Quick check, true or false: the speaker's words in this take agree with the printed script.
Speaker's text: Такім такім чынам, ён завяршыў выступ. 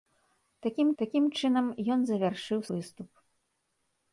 true